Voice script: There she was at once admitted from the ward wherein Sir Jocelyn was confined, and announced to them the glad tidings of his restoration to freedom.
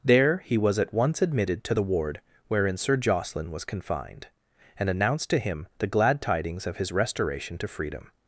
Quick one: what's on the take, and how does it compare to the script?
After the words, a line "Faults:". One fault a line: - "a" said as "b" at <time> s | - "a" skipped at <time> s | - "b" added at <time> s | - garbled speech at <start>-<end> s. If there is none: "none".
There he was at once admitted to the ward wherein Sir Jocelyn was confined, and announced to him the glad tidings of his restoration to freedom.
Faults:
- "she" said as "he" at 0.4 s
- "from" said as "to" at 1.6 s
- "them" said as "him" at 5.4 s